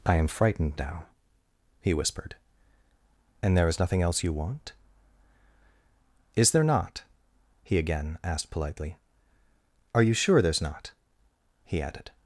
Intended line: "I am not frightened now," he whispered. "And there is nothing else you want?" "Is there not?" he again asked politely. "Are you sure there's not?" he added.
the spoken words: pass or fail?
fail